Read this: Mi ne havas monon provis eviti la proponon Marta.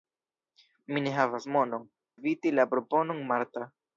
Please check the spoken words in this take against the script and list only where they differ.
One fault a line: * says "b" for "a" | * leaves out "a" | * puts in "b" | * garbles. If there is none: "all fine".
* leaves out "provis"